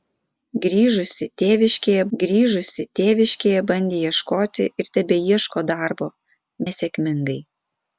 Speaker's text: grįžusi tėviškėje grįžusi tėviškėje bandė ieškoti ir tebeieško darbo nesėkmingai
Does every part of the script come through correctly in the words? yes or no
yes